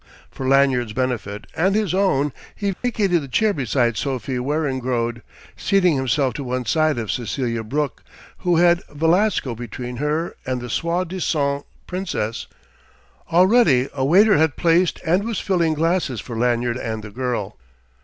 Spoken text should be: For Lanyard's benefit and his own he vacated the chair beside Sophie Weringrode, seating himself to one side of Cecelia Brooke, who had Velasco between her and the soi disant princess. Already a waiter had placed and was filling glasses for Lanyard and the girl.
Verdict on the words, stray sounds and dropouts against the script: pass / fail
fail